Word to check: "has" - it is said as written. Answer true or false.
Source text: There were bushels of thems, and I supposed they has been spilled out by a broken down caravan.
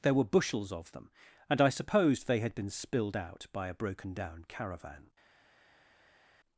false